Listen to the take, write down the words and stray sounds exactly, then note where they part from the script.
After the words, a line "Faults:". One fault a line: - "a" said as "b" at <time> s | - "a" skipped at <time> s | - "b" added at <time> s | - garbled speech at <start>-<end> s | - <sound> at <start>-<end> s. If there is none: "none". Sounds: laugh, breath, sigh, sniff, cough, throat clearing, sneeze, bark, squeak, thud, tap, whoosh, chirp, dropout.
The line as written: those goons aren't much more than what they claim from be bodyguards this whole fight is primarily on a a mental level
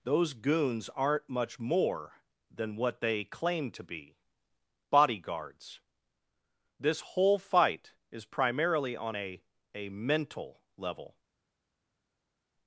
those goons aren't much more than what they claim to be bodyguards this whole fight is primarily on a a mental level
Faults:
- "from" said as "to" at 3.7 s